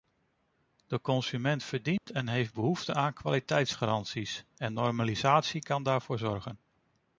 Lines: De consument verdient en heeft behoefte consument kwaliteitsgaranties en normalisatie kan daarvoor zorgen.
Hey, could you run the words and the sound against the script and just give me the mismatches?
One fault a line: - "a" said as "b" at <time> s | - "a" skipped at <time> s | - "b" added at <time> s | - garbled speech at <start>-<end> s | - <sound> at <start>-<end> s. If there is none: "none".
- dropout at 2.0-2.1 s
- "consument" said as "aan" at 2.9 s